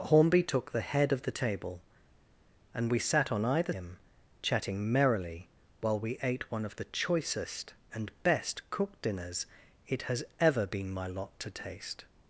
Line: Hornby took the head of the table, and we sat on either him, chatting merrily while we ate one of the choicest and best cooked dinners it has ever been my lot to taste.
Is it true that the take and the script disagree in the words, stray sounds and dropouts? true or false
false